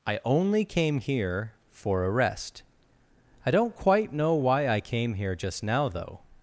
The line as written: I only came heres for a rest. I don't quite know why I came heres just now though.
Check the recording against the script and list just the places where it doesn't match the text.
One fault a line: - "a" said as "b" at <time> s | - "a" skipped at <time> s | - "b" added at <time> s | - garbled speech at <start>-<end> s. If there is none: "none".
- "heres" said as "here" at 1.0 s
- "heres" said as "here" at 5.1 s